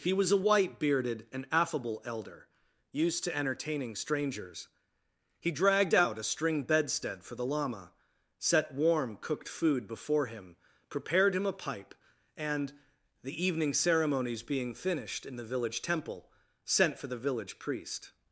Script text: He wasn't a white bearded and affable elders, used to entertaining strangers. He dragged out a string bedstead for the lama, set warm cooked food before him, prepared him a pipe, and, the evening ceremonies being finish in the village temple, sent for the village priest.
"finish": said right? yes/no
no